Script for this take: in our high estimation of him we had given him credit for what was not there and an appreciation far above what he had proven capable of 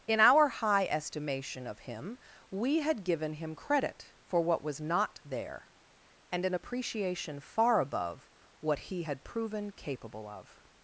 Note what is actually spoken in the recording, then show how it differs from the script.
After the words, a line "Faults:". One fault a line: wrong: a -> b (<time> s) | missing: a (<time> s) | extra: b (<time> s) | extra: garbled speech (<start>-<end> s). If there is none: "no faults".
in our high estimation of him we had given him credit for what was not there and an appreciation far above what he had proven capable of
Faults:
no faults